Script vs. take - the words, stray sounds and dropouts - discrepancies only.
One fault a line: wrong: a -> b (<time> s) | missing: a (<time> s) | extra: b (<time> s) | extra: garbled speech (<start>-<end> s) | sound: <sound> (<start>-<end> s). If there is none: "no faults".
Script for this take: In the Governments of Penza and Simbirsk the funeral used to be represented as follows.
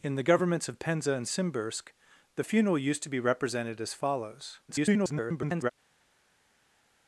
extra: garbled speech (4.7-5.7 s)